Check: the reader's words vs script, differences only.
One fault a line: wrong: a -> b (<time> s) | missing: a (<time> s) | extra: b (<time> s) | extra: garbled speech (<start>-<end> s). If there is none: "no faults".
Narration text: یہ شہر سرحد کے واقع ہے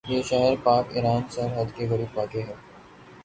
extra: پاک ایران (0.6 s)
extra: قریب (1.9 s)